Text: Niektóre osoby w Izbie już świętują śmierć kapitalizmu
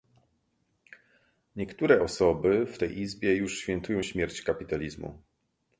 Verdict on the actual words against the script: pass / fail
fail